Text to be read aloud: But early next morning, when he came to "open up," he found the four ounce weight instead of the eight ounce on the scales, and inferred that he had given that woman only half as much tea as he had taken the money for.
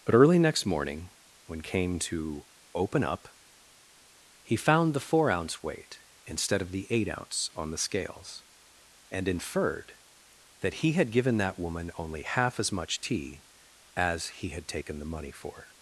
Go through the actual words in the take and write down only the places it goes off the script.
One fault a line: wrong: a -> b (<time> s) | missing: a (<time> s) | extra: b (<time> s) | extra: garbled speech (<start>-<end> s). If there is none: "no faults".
missing: he (1.6 s)